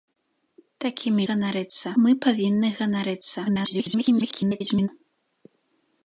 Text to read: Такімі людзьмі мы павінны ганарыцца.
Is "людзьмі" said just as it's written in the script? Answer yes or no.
no